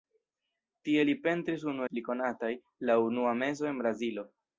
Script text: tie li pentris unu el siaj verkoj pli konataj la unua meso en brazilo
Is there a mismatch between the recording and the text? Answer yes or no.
yes